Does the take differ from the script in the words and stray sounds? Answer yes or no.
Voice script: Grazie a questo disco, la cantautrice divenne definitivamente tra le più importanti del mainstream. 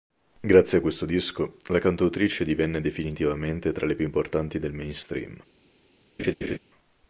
yes